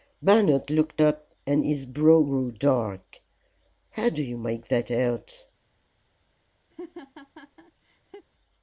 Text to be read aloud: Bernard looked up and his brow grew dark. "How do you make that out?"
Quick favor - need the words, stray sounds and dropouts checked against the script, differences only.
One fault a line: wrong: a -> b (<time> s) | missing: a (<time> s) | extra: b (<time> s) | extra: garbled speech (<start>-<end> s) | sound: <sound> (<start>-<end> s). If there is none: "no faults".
sound: laugh (6.7-8.3 s)